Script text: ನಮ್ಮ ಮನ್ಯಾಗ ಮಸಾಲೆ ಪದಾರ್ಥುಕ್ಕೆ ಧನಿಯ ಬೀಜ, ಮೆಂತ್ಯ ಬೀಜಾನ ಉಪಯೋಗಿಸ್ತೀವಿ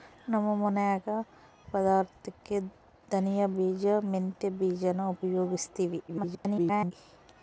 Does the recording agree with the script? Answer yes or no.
no